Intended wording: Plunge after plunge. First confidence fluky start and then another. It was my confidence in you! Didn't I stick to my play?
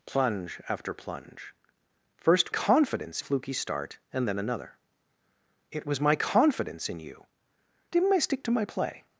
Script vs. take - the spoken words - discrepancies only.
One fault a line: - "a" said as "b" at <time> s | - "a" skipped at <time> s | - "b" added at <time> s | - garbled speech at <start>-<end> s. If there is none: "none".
none